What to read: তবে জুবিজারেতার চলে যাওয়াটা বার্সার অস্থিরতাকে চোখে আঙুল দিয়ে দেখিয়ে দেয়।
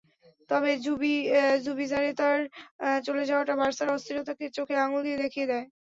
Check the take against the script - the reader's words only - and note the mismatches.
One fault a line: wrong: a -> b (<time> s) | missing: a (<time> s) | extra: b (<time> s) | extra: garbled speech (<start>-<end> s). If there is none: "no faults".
no faults